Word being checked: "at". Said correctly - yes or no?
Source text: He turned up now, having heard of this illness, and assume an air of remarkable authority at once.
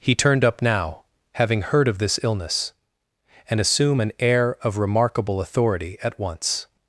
yes